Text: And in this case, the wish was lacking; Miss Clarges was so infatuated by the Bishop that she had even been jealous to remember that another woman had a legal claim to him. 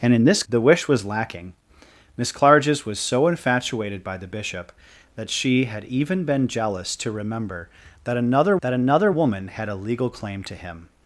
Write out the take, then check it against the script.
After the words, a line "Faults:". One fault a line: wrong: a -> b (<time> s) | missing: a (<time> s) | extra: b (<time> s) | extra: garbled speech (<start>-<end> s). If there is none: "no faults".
And in this the wish was lacking; Miss Clarges was so infatuated by the Bishop that she had even been jealous to remember that another that another woman had a legal claim to him.
Faults:
missing: case (0.4 s)
extra: that another (8.6 s)